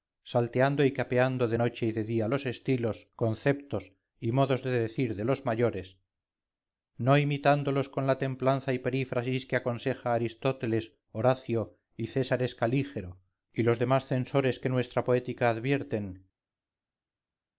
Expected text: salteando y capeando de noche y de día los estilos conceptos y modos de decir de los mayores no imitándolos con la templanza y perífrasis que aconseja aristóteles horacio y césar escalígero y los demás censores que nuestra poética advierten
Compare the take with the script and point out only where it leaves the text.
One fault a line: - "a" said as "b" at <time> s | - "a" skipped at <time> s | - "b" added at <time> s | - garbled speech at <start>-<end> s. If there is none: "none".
none